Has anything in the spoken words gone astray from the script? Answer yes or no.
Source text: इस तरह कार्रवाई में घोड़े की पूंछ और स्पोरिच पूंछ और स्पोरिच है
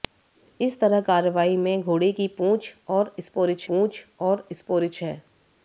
no